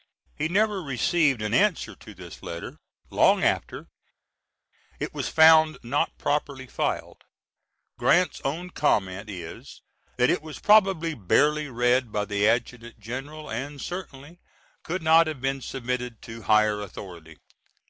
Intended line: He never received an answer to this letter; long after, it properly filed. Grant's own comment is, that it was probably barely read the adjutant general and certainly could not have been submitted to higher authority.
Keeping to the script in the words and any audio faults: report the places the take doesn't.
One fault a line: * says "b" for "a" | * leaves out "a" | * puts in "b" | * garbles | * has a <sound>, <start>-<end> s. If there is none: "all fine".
* puts in "was found not"
* puts in "by"